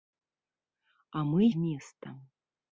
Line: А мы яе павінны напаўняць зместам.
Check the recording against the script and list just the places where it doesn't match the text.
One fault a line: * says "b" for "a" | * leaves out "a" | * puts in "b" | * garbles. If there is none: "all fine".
* leaves out "яе павінны напаўняць"